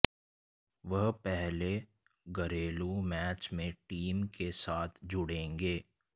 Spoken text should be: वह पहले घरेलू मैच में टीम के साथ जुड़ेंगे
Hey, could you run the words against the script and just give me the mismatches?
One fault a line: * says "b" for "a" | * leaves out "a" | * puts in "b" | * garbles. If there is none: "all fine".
all fine